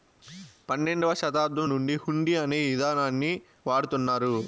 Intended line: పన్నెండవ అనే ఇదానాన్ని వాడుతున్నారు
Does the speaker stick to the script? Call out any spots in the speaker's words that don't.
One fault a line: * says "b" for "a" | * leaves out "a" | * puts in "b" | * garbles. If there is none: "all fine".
* puts in "శతాబ్దం నుండి హుండీ"